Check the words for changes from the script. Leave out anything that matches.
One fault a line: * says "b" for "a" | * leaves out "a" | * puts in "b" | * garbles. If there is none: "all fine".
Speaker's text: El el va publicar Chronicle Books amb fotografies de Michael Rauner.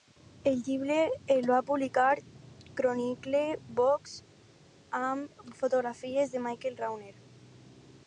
* puts in "llibre"